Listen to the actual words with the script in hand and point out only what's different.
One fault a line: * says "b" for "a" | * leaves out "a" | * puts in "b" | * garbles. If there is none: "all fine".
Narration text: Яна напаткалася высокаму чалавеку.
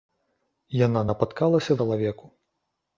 * leaves out "высокаму"